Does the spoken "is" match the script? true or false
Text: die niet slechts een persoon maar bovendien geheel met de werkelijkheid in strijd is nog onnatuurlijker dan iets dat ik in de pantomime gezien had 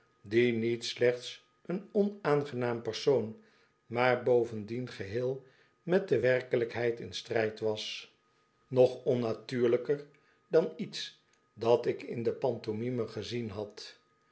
false